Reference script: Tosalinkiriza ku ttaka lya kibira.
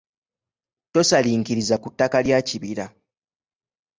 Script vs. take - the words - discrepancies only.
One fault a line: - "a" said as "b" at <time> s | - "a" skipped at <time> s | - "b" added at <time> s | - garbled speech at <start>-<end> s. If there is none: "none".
none